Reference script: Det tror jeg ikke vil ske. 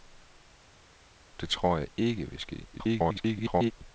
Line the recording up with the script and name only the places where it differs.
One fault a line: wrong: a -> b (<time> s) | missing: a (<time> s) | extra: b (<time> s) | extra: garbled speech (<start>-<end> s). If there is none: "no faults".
extra: garbled speech (2.7-3.7 s)